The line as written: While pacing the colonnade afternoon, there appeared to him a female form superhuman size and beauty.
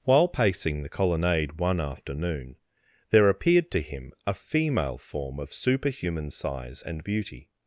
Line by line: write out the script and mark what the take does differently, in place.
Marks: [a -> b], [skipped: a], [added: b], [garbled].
While pacing the colonnade [added: one] afternoon, there appeared to him a female form [added: of] superhuman size and beauty.